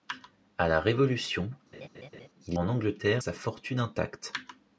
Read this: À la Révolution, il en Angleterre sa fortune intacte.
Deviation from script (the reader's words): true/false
false